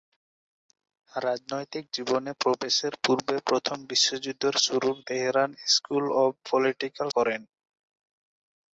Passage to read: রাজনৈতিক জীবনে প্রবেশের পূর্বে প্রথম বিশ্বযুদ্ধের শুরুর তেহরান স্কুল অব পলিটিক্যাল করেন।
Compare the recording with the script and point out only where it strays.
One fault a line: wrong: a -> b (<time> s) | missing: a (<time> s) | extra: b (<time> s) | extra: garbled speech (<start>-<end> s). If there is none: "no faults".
no faults